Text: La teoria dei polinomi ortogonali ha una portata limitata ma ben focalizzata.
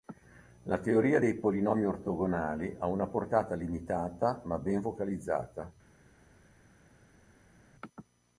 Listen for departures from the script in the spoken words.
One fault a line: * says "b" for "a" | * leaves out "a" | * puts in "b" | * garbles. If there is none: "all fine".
all fine